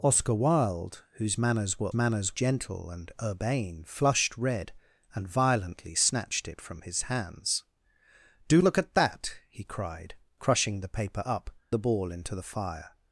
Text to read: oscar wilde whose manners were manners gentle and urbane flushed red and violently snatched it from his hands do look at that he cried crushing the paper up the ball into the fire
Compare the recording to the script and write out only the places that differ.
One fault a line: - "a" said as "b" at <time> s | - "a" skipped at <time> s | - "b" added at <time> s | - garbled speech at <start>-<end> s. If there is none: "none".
none